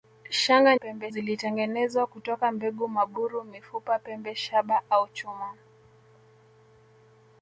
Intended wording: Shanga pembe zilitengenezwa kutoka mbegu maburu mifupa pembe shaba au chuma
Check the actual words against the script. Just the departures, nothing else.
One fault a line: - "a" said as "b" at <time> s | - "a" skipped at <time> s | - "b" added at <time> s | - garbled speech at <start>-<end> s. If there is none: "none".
none